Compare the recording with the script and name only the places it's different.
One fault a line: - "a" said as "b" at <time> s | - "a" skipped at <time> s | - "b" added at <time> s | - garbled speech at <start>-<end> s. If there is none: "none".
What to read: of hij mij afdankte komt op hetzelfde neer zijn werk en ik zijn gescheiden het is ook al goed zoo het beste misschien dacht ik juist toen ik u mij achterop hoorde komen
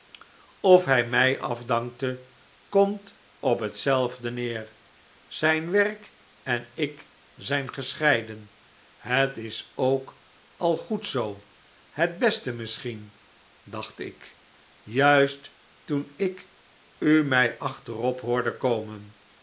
none